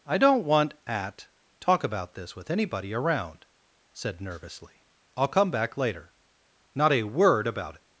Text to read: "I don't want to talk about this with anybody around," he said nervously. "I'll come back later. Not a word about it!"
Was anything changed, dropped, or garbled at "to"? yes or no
yes